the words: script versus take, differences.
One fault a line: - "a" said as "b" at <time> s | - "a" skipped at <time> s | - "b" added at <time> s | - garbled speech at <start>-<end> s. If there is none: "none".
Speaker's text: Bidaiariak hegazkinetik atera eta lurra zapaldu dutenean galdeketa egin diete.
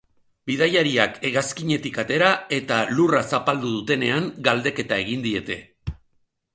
none